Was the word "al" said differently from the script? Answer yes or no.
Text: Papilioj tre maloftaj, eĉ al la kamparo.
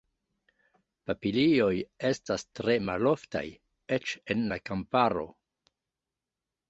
yes